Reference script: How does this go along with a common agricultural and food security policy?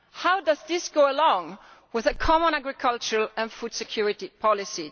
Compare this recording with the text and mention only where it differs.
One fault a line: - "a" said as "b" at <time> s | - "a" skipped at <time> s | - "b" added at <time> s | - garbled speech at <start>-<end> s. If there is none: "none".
none